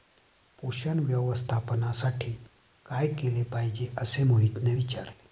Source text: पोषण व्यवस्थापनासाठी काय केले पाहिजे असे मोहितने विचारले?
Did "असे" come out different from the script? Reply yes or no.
no